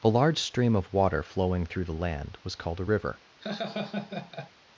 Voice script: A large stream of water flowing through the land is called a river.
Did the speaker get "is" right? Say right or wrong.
wrong